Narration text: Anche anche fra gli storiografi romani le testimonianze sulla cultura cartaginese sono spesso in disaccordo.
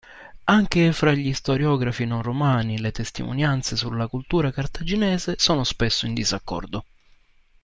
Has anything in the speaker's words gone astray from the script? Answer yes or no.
yes